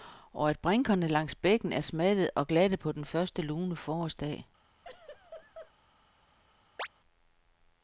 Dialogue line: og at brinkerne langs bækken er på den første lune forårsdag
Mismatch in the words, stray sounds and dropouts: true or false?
true